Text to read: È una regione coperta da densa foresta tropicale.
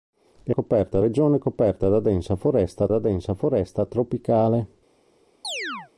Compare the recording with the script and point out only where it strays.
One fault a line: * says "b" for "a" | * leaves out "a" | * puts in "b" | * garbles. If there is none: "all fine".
* says "coperta" for "una"
* puts in "da densa foresta"